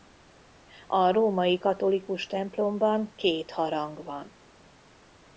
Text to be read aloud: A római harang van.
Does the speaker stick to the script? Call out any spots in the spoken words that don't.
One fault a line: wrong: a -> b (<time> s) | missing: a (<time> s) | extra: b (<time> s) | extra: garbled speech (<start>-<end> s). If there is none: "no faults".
extra: katolikus templomban két (1.6 s)